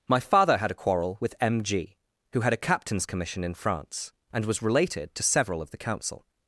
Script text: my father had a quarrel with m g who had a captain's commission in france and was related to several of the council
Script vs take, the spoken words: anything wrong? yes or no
no